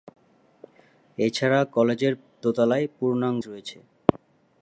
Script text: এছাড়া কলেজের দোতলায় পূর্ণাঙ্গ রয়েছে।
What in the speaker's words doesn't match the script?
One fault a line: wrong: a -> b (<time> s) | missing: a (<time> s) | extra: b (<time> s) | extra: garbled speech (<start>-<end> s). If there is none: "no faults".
no faults